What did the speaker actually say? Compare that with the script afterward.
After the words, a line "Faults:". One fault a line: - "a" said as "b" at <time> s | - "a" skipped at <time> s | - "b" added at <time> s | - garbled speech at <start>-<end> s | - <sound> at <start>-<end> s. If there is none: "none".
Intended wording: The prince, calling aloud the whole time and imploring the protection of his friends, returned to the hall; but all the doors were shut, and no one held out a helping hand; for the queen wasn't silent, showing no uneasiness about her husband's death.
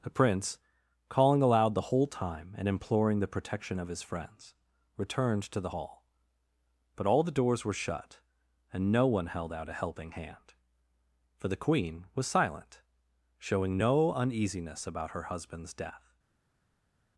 The prince, calling aloud the whole time and imploring the protection of his friends, returned to the hall; but all the doors were shut, and no one held out a helping hand; for the queen was silent, showing no uneasiness about her husband's death.
Faults:
- "wasn't" said as "was" at 12.2 s